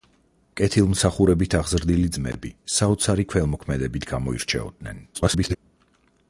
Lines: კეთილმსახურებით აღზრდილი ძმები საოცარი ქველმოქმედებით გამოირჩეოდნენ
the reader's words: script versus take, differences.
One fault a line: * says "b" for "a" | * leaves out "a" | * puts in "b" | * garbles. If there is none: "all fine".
* garbles